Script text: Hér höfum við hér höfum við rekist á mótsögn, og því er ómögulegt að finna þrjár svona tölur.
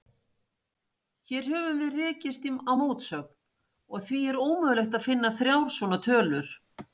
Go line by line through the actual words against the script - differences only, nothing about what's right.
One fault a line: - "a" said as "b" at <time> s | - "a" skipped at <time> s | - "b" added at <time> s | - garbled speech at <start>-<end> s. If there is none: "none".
- "hér höfum við" skipped at 2.0 s